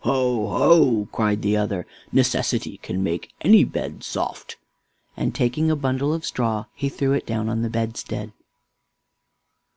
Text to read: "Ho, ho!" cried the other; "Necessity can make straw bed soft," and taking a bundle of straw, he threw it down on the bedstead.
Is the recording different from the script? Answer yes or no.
yes